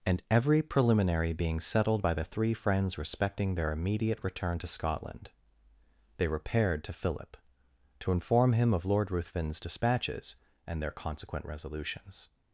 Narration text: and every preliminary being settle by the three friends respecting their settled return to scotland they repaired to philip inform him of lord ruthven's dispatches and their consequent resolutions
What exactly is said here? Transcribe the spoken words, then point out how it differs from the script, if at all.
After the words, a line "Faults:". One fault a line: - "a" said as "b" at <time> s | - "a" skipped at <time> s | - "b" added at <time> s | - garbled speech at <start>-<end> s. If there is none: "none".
and every preliminary being settled by the three friends respecting their immediate return to scotland they repaired to philip to inform him of lord ruthven's dispatches and their consequent resolutions
Faults:
- "settle" said as "settled" at 1.6 s
- "settled" said as "immediate" at 3.7 s
- "to" added at 8.0 s